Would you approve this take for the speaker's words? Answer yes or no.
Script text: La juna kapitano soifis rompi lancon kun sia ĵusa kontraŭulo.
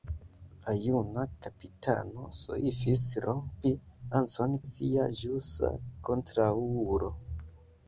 no